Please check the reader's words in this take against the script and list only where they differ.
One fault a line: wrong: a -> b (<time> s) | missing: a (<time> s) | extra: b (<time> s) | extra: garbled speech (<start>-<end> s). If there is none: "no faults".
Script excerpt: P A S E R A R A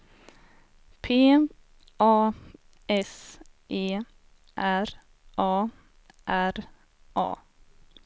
no faults